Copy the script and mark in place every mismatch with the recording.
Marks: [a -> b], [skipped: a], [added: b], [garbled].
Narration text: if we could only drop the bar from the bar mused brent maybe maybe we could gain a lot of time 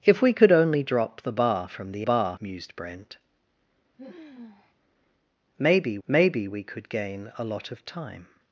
if we could only drop the bar from the bar mused brent maybe maybe we could gain a lot of time